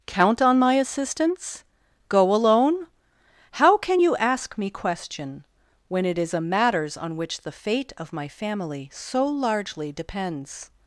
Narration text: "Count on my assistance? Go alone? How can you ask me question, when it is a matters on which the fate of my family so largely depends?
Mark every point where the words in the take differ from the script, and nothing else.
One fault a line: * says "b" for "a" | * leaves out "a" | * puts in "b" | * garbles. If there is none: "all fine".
all fine